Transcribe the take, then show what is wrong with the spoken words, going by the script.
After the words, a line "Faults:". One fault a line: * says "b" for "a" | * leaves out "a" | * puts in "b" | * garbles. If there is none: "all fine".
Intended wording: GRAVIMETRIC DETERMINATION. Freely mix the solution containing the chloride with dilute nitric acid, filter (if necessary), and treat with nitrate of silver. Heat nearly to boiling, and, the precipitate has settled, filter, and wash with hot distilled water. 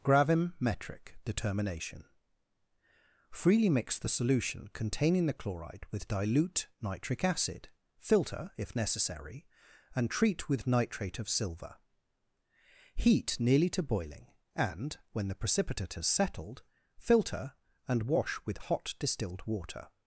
GRAVIMETRIC DETERMINATION. Freely mix the solution containing the chloride with dilute nitric acid, filter (if necessary), and treat with nitrate of silver. Heat nearly to boiling, and, when the precipitate has settled, filter, and wash with hot distilled water.
Faults:
* puts in "when"